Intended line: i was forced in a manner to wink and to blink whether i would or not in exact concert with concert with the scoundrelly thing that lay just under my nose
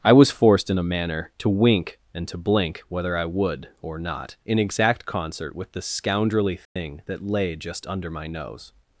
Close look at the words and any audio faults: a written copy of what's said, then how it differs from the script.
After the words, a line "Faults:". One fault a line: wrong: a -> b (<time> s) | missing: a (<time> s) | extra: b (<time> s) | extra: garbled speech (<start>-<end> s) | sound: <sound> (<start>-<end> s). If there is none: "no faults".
i was forced in a manner to wink and to blink whether i would or not in exact concert with the scoundrelly thing that lay just under my nose
Faults:
missing: concert with (5.7 s)
sound: dropout (6.6-6.8 s)